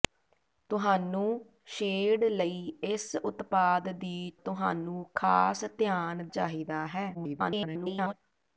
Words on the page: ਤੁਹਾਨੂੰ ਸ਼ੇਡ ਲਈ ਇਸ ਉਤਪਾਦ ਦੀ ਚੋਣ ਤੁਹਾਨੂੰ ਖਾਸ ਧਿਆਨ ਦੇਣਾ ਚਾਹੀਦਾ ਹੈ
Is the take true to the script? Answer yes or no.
no